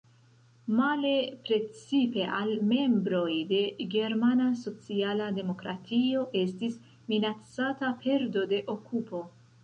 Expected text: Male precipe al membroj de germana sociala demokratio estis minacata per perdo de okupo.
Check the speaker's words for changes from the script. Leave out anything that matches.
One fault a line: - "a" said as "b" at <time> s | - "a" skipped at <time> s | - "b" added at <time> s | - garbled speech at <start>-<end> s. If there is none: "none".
- "per" skipped at 8.0 s